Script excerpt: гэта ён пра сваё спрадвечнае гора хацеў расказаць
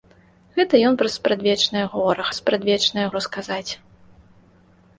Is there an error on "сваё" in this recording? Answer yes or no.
yes